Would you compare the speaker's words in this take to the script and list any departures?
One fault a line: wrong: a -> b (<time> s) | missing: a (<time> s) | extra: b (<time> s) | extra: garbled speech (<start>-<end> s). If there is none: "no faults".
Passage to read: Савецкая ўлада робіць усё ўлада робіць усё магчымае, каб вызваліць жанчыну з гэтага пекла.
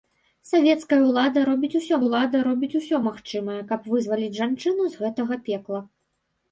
no faults